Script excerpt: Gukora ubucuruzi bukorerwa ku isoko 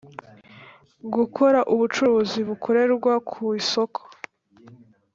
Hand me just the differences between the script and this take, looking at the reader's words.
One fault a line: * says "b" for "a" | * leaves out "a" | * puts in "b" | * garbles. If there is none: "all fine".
all fine